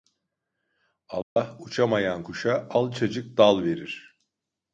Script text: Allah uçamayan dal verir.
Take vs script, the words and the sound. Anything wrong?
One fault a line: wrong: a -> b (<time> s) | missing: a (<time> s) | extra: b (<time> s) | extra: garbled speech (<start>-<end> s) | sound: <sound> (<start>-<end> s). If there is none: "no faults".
sound: dropout (1.2-1.4 s)
extra: kuşa alçacık (2.2 s)